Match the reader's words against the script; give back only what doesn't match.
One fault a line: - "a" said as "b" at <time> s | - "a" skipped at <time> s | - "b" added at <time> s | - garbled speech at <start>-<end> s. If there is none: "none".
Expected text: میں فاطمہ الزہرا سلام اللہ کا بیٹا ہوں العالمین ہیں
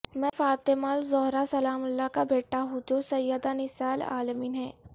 - "جو سیدہ نساء" added at 2.9 s